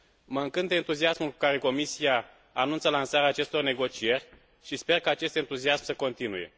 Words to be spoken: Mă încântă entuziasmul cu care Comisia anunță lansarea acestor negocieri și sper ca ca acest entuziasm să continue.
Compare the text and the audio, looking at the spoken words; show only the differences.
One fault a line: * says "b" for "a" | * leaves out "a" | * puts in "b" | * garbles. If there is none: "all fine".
* leaves out "ca"